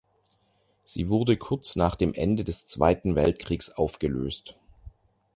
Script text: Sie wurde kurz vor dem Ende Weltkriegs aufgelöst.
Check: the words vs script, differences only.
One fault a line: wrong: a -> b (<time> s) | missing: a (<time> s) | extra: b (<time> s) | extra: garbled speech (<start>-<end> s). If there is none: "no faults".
wrong: vor -> nach (1.8 s)
extra: des Zweiten (2.4 s)